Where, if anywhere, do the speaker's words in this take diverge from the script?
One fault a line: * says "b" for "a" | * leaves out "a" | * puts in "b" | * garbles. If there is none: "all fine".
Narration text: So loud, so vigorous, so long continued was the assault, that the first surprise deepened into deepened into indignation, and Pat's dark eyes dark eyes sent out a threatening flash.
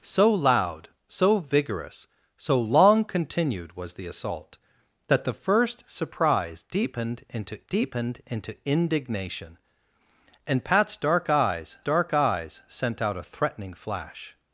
all fine